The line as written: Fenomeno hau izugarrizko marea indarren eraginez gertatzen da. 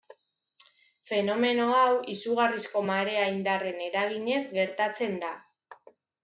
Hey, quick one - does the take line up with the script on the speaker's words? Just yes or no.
yes